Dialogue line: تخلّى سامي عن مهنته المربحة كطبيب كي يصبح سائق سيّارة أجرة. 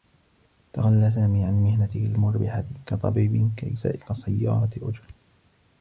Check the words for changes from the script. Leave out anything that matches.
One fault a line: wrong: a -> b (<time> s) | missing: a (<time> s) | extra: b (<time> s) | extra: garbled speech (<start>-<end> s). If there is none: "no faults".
missing: يصبح (3.8 s)